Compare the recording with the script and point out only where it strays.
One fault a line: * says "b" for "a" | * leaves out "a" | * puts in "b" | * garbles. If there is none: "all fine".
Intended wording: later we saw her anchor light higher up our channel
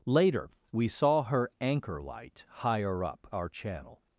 all fine